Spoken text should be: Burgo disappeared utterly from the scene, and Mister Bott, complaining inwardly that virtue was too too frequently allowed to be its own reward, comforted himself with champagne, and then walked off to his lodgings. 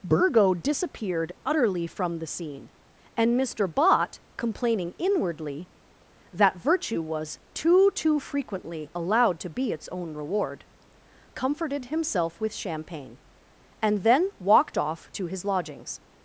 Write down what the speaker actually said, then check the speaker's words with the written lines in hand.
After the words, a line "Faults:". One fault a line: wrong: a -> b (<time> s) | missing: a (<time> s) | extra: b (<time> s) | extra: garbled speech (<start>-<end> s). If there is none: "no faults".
Burgo disappeared utterly from the scene, and Mister Bott, complaining inwardly that virtue was too too frequently allowed to be its own reward, comforted himself with champagne, and then walked off to his lodgings.
Faults:
no faults